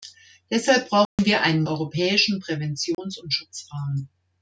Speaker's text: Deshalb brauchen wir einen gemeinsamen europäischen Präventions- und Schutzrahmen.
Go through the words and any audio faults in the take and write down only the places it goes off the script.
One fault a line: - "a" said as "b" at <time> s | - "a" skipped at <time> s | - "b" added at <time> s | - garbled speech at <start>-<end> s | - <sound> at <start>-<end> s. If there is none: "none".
- dropout at 1.1-1.2 s
- "gemeinsamen" skipped at 1.6 s
- dropout at 2.9-3.0 s